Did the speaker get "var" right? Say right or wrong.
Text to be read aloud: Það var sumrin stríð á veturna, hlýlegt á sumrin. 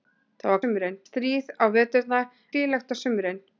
right